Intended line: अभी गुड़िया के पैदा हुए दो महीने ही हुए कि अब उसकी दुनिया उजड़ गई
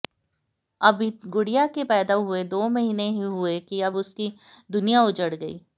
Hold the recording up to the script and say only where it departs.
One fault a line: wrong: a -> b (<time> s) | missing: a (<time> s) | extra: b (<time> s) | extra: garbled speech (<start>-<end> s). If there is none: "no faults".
no faults